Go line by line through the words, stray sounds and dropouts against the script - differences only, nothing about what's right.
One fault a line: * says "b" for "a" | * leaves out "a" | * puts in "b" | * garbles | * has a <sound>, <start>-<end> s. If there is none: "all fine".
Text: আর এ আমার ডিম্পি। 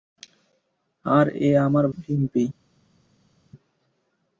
all fine